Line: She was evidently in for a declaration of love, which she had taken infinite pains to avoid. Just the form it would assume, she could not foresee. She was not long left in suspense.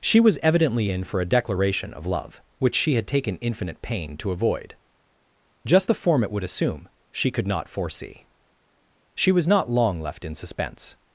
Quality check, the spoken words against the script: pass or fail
fail